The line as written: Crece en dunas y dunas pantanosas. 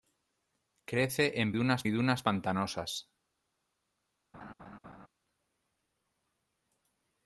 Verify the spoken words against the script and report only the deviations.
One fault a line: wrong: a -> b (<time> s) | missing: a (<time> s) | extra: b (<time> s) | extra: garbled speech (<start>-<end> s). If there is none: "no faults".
no faults